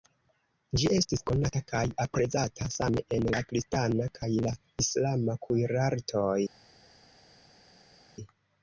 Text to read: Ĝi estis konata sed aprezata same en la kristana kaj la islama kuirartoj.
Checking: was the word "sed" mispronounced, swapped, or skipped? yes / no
yes